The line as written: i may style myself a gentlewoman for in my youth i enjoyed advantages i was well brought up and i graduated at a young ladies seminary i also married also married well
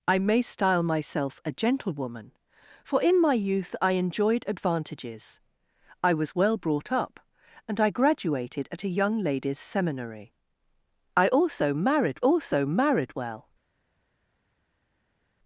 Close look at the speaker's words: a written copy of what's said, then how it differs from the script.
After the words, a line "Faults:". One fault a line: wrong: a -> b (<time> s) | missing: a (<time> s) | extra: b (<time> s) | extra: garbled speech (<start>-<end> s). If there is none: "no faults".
i may style myself a gentlewoman for in my youth i enjoyed advantages i was well brought up and i graduated at a young ladies seminary i also married also married well
Faults:
no faults